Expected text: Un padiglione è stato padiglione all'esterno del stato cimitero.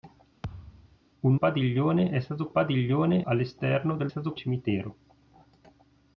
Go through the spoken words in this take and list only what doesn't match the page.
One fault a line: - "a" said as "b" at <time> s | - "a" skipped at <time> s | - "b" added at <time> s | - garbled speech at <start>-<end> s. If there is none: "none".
none